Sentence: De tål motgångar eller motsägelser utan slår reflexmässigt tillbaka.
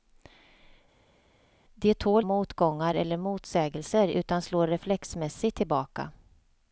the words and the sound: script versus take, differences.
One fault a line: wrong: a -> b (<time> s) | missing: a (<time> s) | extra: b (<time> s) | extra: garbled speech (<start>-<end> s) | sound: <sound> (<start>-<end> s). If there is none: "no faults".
no faults